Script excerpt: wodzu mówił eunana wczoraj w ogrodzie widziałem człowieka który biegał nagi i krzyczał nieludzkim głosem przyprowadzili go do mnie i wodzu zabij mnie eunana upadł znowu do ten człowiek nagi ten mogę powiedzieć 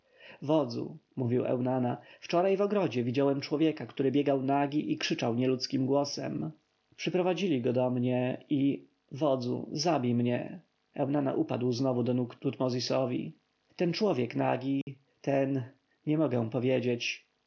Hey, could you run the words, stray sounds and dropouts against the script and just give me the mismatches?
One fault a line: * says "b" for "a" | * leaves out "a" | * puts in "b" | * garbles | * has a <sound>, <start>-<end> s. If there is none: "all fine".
* puts in "nóg tutmozisowi"
* has a dropout, 14.8-14.9 s
* puts in "nie"